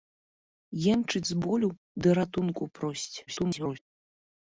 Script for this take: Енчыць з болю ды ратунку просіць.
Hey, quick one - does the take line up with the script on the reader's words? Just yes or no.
no